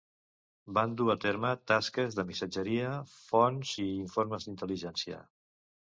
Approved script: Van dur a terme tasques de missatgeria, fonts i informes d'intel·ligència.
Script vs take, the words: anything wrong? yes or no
no